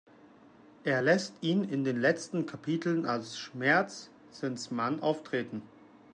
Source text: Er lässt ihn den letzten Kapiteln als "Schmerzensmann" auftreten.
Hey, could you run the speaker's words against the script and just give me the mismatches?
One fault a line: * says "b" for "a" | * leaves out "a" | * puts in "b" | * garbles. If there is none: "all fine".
* puts in "in"